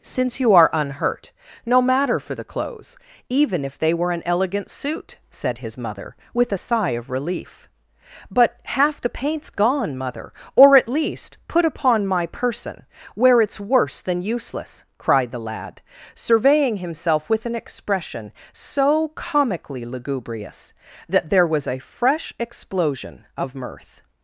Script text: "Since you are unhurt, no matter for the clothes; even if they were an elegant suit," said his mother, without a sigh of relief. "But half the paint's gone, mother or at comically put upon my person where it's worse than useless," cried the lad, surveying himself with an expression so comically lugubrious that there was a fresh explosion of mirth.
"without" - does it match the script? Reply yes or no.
no